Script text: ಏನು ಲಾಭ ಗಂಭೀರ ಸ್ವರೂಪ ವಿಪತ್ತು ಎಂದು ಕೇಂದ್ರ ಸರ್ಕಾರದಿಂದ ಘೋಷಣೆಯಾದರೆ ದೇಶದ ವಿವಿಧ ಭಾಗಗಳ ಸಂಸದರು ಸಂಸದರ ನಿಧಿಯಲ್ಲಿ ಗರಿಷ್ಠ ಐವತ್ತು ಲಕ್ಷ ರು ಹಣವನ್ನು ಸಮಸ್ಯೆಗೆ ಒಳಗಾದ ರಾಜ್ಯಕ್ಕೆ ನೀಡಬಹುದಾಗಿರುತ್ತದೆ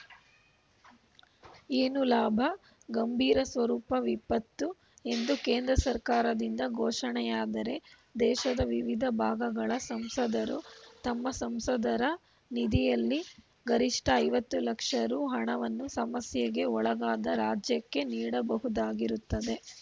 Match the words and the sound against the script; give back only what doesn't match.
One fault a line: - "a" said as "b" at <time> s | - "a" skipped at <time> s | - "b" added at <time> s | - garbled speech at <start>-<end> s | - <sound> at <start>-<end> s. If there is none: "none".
- "ತಮ್ಮ" added at 11.0 s